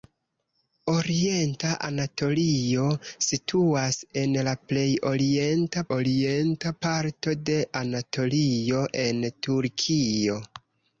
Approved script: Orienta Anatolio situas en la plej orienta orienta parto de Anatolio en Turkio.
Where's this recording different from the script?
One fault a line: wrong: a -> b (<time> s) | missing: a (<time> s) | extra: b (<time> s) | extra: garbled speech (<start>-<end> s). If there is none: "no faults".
no faults